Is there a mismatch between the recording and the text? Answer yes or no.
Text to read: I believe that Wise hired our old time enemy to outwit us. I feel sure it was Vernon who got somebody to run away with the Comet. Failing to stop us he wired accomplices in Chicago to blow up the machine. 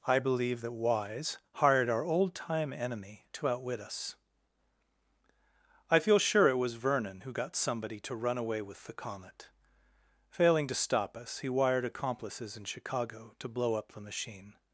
no